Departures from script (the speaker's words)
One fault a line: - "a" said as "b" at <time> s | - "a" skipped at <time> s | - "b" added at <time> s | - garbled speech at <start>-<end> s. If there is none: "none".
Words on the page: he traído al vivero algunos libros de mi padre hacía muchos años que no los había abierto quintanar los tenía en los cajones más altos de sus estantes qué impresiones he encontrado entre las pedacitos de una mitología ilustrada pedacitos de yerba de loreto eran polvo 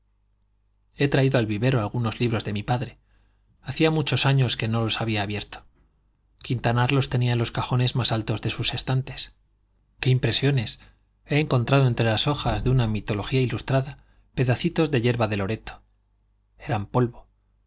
- "pedacitos" said as "hojas" at 12.3 s